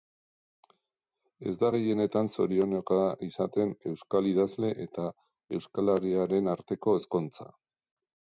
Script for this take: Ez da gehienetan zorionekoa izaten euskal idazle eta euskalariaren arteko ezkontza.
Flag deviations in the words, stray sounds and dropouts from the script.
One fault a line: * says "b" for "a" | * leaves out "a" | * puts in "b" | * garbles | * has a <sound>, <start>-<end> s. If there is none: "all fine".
all fine